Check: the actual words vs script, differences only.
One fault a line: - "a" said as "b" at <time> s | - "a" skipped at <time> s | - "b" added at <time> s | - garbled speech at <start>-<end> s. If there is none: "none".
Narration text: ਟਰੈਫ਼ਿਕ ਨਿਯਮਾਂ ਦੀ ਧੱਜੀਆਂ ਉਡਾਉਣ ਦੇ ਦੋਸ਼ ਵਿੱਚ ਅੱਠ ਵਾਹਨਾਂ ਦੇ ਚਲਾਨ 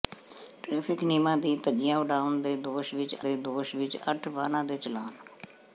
- "ਦੇ ਦੋਸ਼ ਵਿੱਚ" added at 3.2 s